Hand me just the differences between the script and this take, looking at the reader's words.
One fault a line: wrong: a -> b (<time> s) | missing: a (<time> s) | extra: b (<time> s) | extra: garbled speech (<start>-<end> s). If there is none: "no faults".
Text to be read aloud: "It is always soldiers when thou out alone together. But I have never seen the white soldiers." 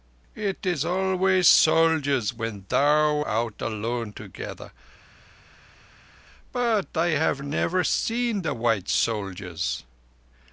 no faults